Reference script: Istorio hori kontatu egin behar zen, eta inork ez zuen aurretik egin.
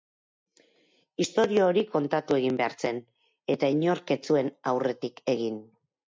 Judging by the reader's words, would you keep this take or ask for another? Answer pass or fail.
pass